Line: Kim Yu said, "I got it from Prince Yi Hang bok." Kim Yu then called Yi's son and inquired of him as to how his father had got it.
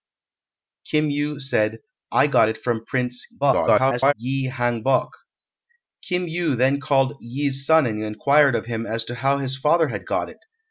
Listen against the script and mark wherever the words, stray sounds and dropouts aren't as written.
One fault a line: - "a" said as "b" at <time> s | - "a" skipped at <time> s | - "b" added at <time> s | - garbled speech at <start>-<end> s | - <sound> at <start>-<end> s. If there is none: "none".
- garbled speech at 3.4-4.1 s